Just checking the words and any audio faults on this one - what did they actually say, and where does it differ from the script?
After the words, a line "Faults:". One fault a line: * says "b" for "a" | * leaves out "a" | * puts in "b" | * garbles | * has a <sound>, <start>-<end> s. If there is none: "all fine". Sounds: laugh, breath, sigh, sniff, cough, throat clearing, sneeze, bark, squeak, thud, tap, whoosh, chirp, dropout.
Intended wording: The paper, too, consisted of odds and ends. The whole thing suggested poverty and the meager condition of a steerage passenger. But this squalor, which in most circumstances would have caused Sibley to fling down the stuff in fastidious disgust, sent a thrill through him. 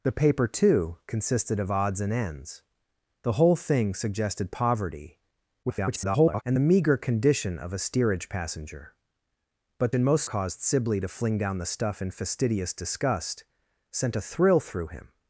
The paper, too, consisted of odds and ends. The whole thing suggested poverty [garbled] and the meager condition of a steerage passenger. But in most caused Sibley to fling down the stuff in fastidious disgust, sent a thrill through him.
Faults:
* garbles
* leaves out "this squalor which"
* leaves out "circumstances would have"